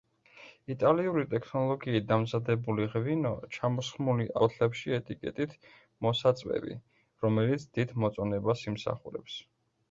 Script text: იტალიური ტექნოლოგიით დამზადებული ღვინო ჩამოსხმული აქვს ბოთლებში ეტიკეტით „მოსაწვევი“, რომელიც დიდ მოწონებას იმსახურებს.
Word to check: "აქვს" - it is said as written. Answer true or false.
false